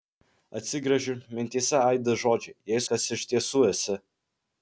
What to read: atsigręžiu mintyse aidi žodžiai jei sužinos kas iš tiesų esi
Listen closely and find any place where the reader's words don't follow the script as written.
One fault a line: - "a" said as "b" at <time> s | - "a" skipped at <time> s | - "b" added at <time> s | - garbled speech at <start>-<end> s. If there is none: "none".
- "sužinos" skipped at 2.8 s